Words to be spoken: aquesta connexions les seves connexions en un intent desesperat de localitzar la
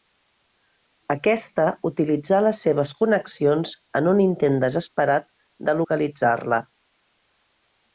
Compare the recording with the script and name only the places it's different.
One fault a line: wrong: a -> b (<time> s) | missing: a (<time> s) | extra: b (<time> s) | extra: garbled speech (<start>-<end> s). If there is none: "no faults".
wrong: connexions -> utilitzà (1.9 s)